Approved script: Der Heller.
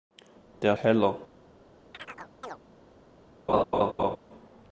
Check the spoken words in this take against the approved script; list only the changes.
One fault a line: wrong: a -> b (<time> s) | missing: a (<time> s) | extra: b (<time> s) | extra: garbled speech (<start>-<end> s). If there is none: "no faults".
no faults